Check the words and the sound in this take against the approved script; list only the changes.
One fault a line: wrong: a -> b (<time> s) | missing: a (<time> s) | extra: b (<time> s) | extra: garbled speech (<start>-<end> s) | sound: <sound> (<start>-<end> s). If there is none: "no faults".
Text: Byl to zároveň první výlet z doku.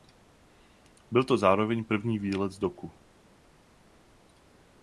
no faults